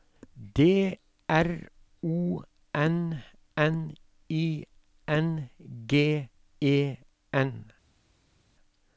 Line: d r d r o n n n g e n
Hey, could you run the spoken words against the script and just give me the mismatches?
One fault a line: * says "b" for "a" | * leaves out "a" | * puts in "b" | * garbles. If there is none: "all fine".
* leaves out "d r"
* puts in "i"